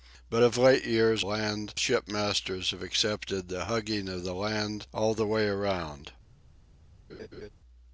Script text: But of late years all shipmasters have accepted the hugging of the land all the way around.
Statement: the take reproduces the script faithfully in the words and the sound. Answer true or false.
false